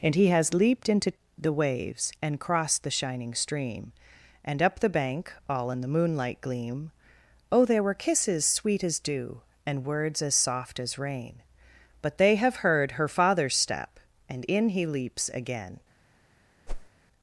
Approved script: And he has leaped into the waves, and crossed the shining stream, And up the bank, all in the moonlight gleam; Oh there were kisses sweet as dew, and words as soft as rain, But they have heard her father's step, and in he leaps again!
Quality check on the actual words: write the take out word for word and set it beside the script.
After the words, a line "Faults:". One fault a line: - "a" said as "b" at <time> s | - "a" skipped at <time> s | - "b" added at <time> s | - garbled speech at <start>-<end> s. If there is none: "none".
And he has leaped into the waves, and crossed the shining stream, And up the bank, all in the moonlight gleam; Oh there were kisses sweet as dew, and words as soft as rain, But they have heard her father's step, and in he leaps again!
Faults:
none